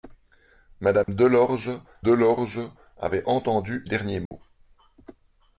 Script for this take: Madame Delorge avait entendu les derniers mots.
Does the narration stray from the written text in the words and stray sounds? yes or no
yes